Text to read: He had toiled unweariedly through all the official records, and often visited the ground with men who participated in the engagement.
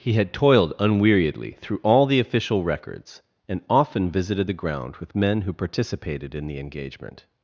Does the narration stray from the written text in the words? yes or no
no